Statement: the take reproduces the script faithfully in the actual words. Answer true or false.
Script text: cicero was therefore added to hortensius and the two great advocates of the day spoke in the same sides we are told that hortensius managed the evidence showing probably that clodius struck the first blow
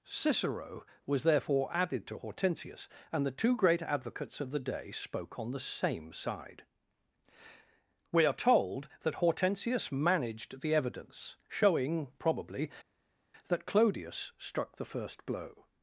false